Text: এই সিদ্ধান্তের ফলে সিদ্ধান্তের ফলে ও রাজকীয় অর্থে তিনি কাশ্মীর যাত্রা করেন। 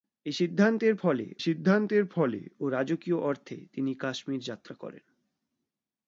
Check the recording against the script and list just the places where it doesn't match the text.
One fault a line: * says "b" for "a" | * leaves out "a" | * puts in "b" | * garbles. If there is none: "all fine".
all fine